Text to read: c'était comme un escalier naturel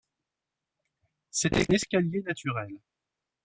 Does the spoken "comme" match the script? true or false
false